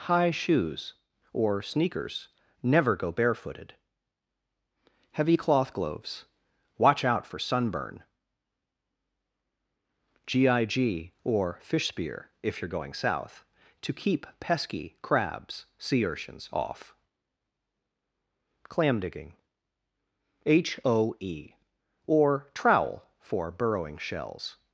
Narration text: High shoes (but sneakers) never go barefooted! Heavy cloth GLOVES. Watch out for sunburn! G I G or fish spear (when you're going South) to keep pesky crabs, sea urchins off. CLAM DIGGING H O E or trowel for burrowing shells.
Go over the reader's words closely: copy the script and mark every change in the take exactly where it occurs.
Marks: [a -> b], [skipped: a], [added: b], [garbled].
High shoes [(but -> or] sneakers) never go barefooted! Heavy cloth GLOVES. Watch out for sunburn! G I G or fish spear [(when -> if] you're going South) to keep pesky crabs, sea urchins off. CLAM DIGGING H O E or trowel for burrowing shells.